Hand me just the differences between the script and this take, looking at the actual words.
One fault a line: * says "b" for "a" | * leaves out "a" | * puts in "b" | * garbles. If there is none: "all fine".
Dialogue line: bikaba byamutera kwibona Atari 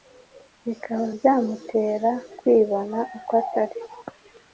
* puts in "uko"